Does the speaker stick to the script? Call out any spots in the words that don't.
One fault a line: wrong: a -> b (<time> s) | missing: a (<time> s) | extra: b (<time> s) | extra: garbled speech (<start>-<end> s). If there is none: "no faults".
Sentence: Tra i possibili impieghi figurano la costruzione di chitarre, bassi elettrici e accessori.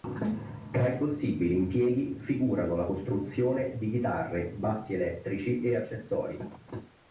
no faults